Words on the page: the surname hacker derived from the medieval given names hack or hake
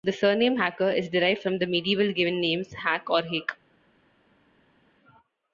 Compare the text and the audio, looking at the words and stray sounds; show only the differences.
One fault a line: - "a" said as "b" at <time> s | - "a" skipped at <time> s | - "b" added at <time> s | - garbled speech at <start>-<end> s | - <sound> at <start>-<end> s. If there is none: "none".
- "is" added at 0.9 s